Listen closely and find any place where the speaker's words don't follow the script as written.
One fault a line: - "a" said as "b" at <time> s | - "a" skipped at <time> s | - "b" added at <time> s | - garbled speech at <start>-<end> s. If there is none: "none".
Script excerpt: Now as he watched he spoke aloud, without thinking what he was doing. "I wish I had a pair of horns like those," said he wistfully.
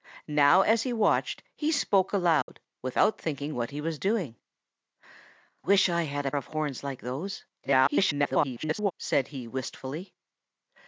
- "I" skipped at 4.4 s
- "pair" skipped at 6.3 s
- garbled speech at 7.6-8.9 s